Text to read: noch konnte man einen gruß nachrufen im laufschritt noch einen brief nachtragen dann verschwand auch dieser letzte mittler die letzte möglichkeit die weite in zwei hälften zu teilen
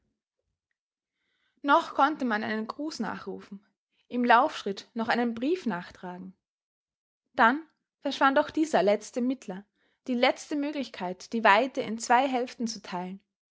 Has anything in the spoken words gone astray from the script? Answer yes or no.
no